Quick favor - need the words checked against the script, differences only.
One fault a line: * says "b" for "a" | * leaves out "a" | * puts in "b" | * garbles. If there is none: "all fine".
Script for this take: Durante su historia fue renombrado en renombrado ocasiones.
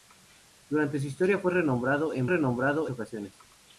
all fine